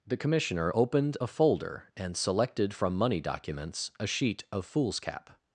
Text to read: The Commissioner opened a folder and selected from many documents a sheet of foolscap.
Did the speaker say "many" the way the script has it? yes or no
no